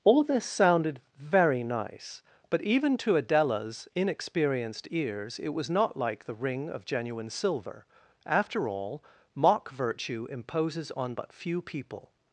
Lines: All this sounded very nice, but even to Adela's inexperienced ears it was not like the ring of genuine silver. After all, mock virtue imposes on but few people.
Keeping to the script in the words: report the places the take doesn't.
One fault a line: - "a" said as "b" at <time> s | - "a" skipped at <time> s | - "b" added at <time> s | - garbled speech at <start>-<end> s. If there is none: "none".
none